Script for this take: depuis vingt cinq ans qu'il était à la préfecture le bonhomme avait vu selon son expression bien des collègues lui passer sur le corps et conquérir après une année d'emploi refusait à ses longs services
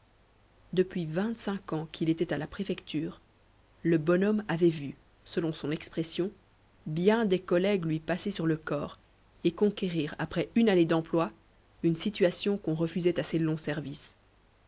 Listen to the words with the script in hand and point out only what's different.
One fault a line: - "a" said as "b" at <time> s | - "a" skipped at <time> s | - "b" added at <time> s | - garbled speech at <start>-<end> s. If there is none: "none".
- "une situation qu'on" added at 11.8 s